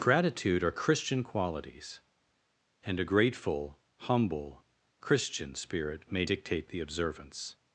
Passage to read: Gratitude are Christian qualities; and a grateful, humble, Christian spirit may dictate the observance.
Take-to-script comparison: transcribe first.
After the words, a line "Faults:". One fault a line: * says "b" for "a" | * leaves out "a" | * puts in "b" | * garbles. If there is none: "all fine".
Gratitude are Christian qualities; and a grateful, humble, Christian spirit may dictate the observance.
Faults:
all fine